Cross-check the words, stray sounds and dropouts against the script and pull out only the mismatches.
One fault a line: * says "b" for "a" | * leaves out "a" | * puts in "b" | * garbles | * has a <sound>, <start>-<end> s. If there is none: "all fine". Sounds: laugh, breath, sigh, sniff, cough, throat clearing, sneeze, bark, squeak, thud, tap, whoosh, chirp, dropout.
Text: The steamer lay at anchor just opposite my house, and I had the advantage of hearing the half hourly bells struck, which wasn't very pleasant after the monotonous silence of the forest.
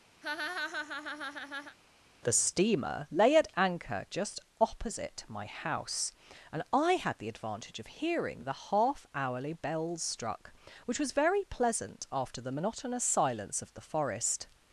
* has a laugh, 0.2-1.8 s
* says "was" for "wasn't"